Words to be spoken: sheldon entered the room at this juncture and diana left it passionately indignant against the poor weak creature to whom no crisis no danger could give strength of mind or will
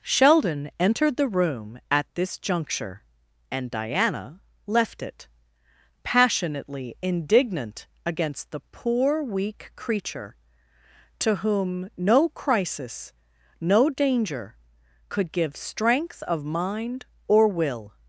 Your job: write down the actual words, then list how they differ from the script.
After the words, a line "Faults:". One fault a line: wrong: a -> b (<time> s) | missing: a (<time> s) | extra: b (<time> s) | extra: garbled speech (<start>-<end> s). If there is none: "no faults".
sheldon entered the room at this juncture and diana left it passionately indignant against the poor weak creature to whom no crisis no danger could give strength of mind or will
Faults:
no faults